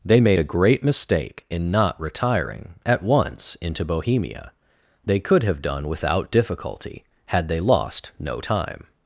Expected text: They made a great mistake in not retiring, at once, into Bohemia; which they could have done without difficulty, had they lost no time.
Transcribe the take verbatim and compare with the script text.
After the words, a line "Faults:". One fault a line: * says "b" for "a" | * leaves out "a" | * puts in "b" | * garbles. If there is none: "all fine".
They made a great mistake in not retiring, at once, into Bohemia; they could have done without difficulty, had they lost no time.
Faults:
* leaves out "which"